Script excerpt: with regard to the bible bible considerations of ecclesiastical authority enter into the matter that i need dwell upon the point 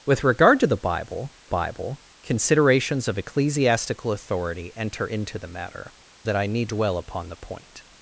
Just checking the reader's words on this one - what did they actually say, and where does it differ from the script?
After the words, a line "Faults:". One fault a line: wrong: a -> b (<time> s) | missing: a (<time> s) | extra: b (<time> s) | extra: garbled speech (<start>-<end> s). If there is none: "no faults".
with regard to the bible bible considerations of ecclesiastical authority enter into the matter that i need dwell upon the point
Faults:
no faults